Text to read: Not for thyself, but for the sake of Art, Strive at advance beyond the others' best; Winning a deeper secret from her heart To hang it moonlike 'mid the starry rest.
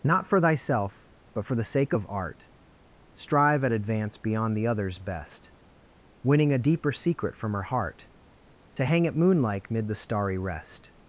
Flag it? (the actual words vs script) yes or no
no